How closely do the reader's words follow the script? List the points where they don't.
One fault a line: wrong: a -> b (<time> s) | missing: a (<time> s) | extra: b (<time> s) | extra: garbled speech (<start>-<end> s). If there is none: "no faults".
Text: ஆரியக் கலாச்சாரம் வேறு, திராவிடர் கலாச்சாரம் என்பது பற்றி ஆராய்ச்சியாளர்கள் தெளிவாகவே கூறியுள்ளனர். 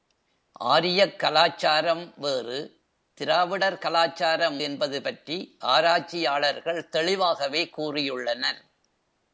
no faults